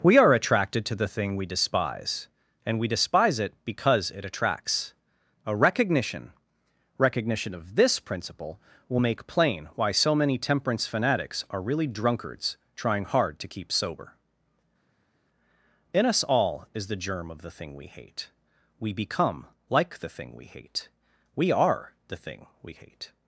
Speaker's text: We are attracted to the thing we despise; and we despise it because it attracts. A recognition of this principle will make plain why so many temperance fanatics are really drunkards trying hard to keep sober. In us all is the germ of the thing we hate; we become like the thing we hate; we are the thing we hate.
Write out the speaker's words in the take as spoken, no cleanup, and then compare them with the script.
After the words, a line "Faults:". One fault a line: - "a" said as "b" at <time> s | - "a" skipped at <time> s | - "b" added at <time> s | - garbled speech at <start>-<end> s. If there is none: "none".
We are attracted to the thing we despise; and we despise it because it attracts. A recognition recognition of this principle will make plain why so many temperance fanatics are really drunkards trying hard to keep sober. In us all is the germ of the thing we hate; we become like the thing we hate; we are the thing we hate.
Faults:
- "recognition" added at 7.0 s